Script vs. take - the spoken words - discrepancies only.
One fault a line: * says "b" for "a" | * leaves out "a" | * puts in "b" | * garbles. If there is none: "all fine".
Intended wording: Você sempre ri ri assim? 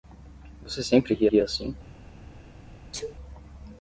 all fine